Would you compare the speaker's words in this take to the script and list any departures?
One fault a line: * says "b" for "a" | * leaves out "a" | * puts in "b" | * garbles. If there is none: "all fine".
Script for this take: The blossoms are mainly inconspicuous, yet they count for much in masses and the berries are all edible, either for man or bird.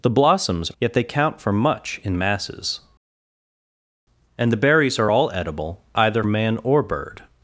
* leaves out "are mainly inconspicuous"
* leaves out "for"